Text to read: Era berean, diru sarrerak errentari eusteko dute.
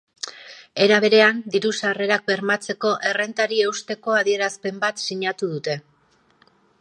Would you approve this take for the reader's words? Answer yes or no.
no